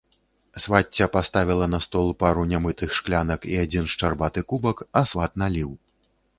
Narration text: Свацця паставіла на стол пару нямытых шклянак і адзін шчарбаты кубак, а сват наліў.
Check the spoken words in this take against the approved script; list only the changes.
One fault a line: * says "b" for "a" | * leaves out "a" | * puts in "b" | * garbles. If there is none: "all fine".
all fine